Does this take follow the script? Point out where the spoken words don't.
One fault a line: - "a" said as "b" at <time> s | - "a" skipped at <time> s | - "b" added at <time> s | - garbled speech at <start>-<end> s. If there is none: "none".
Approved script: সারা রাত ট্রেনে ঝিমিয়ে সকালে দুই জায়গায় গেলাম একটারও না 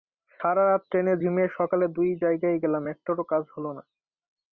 - "কাজ হলো" added at 3.3 s